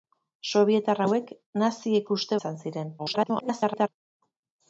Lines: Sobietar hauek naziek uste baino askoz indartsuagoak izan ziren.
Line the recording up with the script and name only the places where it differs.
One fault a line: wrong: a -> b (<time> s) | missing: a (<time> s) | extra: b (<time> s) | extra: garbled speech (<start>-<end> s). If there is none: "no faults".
missing: baino askoz indartsuagoak (2.4 s)
extra: garbled speech (3.0-3.9 s)